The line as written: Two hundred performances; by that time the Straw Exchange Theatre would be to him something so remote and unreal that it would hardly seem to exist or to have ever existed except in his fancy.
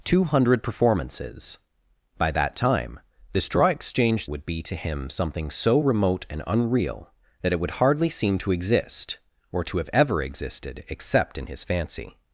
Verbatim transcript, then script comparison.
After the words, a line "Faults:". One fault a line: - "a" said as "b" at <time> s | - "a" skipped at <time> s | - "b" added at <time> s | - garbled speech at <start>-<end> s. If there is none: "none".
Two hundred performances; by that time the Straw Exchange Would be to him something so remote and unreal that it would hardly seem to exist or to have ever existed except in his fancy.
Faults:
- "Theatre" skipped at 4.3 s